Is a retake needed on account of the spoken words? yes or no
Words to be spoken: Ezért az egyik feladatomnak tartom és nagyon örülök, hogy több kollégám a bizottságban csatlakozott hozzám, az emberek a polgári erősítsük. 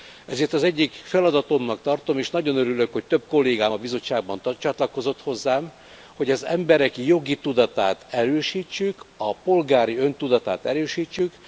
yes